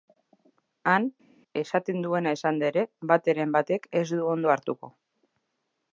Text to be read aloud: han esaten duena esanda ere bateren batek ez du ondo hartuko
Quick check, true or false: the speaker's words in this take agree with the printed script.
true